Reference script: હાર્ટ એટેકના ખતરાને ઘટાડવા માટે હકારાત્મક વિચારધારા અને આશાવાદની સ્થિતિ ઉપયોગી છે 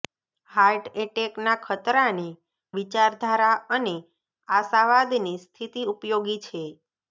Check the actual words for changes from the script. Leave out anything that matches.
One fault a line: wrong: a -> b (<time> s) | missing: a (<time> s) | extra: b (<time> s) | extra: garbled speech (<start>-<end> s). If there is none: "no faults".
missing: ઘટાડવા માટે હકારાત્મક (2.2 s)